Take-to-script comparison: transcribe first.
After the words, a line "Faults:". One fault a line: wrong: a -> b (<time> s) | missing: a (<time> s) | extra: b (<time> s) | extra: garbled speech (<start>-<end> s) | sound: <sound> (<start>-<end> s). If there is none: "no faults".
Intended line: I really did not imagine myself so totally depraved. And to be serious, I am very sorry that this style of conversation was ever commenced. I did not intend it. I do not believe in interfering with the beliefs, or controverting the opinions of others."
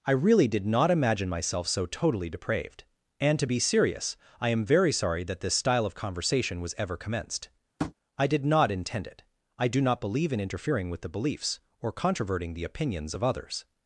I really did not imagine myself so totally depraved. And to be serious, I am very sorry that this style of conversation was ever commenced. I did not intend it. I do not believe in interfering with the beliefs, or controverting the opinions of others."
Faults:
sound: tap (7.8-7.9 s)